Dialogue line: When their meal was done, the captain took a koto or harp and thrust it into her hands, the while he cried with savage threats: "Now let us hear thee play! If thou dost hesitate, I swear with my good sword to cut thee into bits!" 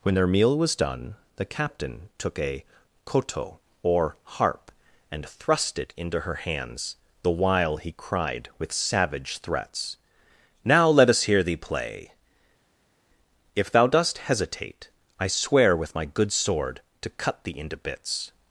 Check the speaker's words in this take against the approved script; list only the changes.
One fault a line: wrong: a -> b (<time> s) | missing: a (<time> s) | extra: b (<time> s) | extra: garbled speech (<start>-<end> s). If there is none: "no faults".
no faults